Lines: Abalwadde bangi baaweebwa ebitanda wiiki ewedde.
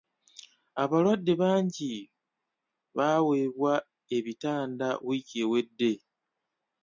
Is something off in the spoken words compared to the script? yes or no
no